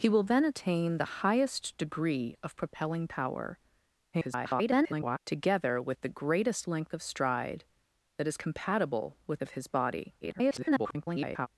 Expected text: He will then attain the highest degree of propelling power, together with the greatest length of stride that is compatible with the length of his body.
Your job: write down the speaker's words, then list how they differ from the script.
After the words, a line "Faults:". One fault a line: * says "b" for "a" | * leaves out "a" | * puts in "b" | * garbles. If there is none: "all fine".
He will then attain the highest degree of propelling power, [garbled] together with the greatest length of stride that is compatible with of his body. [garbled]
Faults:
* garbles
* leaves out "the length"
* garbles